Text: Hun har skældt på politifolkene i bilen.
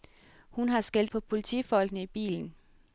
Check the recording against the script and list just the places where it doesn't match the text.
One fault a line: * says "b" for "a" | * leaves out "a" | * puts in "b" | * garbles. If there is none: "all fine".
all fine